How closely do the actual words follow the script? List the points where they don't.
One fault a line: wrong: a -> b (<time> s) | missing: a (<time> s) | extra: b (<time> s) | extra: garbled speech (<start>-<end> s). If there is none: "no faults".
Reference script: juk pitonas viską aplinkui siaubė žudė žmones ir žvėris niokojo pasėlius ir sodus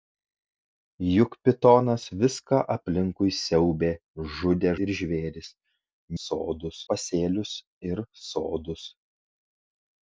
missing: žmones (4.7 s)
wrong: niokojo -> sodus (6.2 s)